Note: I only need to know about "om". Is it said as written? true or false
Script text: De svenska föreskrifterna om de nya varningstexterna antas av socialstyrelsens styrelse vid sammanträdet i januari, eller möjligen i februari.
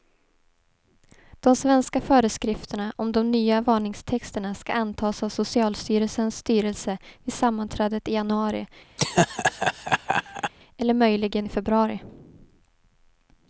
true